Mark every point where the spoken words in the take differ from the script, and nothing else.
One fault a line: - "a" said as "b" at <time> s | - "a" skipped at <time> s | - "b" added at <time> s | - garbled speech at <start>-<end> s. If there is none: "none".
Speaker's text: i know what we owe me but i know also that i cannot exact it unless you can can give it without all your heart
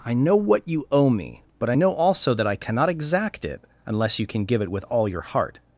- "we" said as "you" at 0.7 s
- "can" skipped at 4.4 s
- "without" said as "with" at 4.7 s